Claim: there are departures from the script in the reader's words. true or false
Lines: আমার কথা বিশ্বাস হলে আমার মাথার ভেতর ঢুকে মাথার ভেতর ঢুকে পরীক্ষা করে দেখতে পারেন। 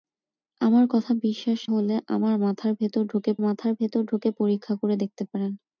false